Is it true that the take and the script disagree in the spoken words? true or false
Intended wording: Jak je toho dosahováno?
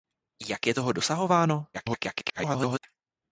true